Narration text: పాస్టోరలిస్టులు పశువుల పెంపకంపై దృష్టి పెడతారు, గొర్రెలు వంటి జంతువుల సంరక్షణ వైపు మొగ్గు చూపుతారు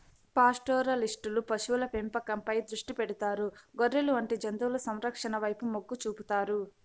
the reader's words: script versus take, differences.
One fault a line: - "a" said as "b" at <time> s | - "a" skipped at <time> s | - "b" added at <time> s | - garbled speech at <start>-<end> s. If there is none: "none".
none